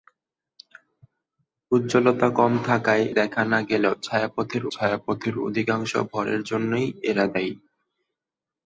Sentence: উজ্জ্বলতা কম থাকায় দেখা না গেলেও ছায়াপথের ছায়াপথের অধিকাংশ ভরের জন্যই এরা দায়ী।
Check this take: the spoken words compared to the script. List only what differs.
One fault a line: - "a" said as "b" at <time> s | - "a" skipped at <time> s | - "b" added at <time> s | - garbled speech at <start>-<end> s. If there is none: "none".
none